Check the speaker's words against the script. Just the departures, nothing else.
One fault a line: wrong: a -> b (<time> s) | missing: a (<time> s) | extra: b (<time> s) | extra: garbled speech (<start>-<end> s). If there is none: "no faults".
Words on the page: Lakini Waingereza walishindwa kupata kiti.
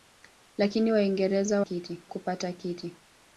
wrong: walishindwa -> kiti (1.6 s)